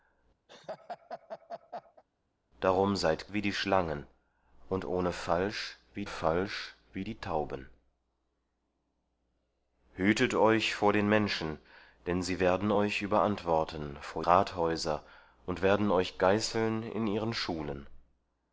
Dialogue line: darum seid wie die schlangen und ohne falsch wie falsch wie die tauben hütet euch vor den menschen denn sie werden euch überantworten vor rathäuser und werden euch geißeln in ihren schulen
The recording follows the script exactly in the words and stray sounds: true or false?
false